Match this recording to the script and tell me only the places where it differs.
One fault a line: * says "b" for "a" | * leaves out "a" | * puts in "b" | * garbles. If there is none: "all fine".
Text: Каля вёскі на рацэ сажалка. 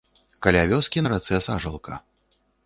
all fine